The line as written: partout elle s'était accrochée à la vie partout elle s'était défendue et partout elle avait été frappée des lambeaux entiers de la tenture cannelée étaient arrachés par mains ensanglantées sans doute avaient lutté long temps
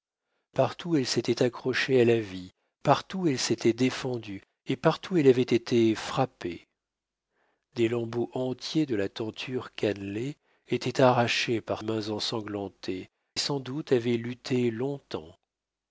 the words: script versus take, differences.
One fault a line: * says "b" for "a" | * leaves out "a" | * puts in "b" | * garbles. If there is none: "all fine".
all fine